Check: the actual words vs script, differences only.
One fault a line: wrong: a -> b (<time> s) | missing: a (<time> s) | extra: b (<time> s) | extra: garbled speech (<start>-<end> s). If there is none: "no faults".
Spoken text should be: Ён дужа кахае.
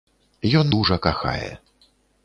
no faults